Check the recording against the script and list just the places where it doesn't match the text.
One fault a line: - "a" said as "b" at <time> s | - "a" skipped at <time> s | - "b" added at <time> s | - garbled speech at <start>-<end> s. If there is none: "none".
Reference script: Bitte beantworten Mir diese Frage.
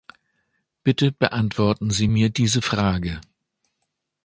- "Sie" added at 1.9 s